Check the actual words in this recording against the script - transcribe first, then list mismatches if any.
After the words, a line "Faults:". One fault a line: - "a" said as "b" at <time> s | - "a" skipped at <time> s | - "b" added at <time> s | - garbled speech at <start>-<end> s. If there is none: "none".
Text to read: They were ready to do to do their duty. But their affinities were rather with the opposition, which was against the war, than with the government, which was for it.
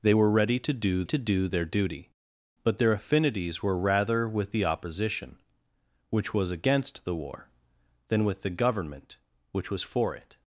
They were ready to do to do their duty. But their affinities were rather with the opposition, which was against the war, than with the government, which was for it.
Faults:
none